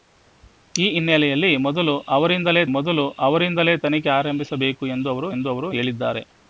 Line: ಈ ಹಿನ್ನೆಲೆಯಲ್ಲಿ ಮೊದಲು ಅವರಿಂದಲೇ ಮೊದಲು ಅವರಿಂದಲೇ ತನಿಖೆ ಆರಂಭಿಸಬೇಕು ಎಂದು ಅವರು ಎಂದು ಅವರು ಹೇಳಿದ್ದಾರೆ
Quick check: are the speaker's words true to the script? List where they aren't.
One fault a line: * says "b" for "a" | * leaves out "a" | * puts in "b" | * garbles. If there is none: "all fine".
all fine